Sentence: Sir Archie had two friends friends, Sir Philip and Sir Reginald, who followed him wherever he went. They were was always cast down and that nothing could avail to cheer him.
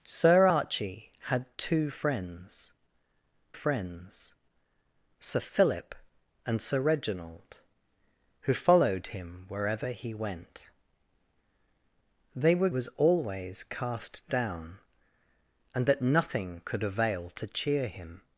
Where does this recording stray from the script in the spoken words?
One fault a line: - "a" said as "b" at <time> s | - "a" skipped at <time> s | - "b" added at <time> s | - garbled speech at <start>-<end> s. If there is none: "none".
none